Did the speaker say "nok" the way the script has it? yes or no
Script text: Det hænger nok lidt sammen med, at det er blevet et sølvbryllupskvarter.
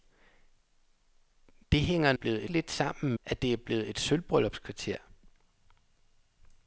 no